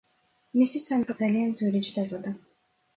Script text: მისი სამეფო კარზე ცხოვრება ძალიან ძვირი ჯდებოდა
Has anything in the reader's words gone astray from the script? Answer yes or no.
yes